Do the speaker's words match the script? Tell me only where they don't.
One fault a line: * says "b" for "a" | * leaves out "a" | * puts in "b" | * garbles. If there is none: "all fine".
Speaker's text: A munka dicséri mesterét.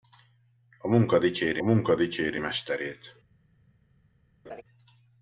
* puts in "munka dicséri"